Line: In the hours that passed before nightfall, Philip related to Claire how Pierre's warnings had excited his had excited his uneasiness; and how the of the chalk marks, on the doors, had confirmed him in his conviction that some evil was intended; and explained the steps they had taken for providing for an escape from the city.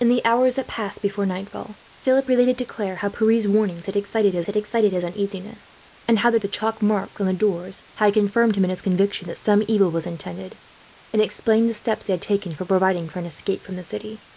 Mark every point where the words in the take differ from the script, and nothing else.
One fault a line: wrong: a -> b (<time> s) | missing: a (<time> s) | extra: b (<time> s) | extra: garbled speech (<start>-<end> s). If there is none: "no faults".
no faults